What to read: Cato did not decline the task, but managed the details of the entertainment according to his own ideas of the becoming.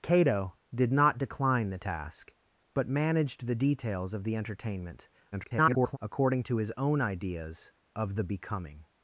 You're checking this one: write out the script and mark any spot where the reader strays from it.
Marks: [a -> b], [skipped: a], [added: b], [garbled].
Cato did not decline the task, but managed the details of the entertainment [garbled] according to his own ideas of the becoming.